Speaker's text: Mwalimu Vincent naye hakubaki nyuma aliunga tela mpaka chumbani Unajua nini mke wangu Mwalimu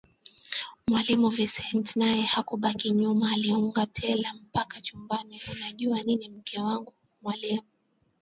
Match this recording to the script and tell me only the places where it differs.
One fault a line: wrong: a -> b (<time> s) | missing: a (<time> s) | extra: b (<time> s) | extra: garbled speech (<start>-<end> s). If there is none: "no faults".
no faults